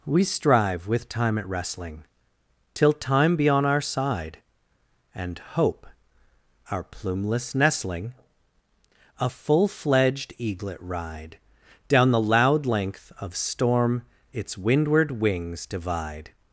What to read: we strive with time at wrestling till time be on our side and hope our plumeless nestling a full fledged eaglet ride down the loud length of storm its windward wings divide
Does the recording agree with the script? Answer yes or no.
yes